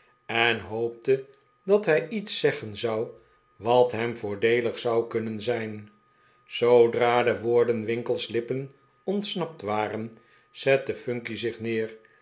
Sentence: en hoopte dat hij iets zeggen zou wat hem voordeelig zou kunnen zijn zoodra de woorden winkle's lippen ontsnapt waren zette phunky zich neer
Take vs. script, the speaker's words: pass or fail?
pass